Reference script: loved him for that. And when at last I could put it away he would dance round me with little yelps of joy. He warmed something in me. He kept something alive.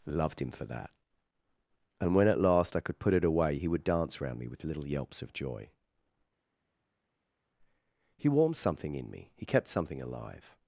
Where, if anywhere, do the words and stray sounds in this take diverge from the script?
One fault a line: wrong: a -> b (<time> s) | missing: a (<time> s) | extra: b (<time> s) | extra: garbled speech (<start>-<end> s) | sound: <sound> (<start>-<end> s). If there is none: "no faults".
no faults